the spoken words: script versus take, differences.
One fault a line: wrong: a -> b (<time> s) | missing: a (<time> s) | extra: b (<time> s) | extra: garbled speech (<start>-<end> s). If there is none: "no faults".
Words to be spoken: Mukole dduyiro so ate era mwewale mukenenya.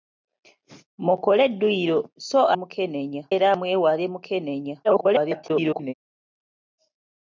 wrong: ate -> mukenenya (2.6 s)
extra: garbled speech (4.8-5.9 s)